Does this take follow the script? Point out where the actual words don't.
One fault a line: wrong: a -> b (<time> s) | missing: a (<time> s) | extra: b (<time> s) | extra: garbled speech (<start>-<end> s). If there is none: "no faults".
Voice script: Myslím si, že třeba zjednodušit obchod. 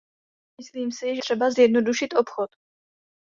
no faults